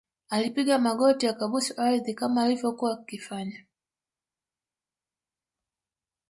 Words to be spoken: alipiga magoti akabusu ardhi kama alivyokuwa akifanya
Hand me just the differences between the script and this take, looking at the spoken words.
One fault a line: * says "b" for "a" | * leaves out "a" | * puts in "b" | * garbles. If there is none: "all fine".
all fine